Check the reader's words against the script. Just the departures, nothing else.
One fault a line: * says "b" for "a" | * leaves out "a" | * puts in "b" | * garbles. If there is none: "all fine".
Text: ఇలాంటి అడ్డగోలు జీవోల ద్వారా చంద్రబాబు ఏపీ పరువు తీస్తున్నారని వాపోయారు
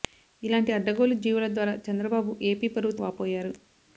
* leaves out "తీస్తున్నారని"